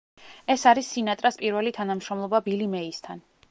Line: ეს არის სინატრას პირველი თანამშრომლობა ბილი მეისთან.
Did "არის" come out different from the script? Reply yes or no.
no